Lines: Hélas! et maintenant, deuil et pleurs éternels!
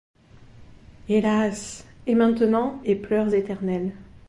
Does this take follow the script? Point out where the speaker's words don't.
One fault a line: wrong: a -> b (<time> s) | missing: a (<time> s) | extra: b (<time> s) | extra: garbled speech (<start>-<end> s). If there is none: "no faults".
missing: deuil (2.8 s)